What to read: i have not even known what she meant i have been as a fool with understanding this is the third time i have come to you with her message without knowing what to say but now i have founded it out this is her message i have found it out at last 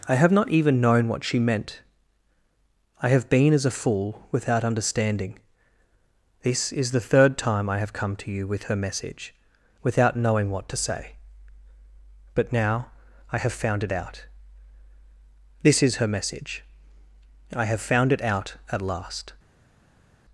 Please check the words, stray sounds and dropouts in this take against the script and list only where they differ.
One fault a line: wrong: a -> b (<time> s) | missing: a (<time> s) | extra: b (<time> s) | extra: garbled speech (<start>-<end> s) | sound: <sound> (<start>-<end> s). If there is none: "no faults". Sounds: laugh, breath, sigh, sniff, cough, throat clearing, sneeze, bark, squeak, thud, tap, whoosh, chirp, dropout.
wrong: with -> without (4.3 s)
wrong: founded -> found (13.5 s)